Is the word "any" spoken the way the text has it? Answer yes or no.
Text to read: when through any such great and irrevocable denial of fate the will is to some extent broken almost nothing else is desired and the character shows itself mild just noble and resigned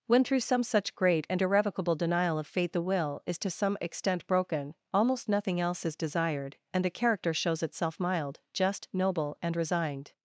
no